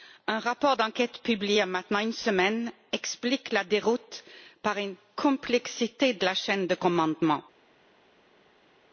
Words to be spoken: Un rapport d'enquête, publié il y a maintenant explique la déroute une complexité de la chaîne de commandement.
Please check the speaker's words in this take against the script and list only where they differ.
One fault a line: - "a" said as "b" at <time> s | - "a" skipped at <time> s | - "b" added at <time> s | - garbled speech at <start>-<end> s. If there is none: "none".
- "une semaine" added at 2.0 s
- "par" added at 4.6 s